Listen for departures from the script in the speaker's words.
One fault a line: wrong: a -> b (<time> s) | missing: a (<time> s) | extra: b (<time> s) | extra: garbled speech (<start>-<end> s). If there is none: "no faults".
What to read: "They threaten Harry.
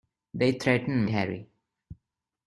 no faults